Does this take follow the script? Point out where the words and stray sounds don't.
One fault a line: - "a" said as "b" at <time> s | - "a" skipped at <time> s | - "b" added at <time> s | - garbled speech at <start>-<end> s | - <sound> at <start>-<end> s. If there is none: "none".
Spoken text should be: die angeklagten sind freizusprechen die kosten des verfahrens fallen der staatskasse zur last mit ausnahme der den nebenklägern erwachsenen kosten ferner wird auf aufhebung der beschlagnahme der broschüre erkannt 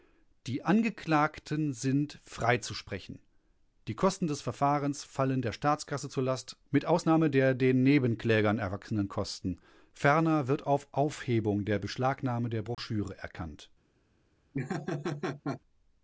- dropout at 12.7-12.8 s
- laugh at 14.5-15.6 s